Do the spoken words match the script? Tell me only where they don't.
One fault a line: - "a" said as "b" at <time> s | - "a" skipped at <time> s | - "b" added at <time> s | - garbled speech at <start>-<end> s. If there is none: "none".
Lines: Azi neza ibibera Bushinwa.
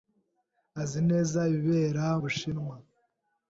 none